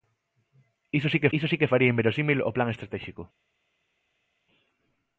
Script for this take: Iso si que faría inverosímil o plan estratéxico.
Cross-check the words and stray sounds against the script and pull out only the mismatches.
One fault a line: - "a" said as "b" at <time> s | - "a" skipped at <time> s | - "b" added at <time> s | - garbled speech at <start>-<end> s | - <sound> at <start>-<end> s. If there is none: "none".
- "iso si que" added at 1.4 s